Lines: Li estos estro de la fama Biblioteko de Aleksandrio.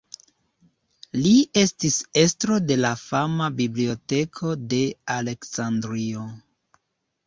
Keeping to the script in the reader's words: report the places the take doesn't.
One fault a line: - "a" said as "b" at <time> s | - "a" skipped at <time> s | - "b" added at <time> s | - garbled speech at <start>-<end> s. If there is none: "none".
- "estos" said as "estis" at 1.6 s